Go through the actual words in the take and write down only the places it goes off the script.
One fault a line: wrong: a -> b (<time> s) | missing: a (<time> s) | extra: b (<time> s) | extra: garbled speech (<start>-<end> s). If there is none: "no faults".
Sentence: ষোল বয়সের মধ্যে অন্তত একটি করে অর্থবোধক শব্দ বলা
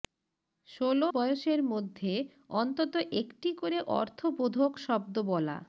no faults